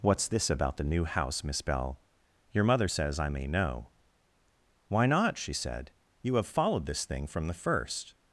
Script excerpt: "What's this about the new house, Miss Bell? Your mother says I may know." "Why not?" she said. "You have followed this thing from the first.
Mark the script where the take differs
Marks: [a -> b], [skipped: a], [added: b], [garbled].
"What's this about the new house, Miss Bell? Your mother says I may know." "Why not?" she said. "You have followed this thing from the first.